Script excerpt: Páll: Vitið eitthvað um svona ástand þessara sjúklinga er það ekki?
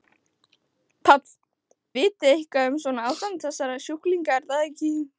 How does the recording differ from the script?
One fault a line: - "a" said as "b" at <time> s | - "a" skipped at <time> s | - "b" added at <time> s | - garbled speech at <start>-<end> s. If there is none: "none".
none